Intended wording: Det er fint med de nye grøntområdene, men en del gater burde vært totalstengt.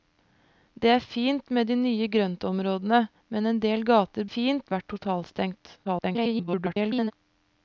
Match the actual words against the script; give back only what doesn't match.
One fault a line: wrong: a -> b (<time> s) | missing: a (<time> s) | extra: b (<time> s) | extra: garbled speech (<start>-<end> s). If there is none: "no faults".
wrong: burde -> fint (4.3 s)
extra: garbled speech (5.8-7.1 s)